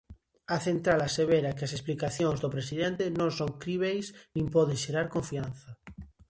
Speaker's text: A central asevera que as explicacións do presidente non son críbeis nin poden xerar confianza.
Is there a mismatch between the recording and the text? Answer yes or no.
no